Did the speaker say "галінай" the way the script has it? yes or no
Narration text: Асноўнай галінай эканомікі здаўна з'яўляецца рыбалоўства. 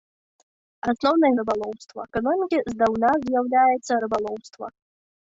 no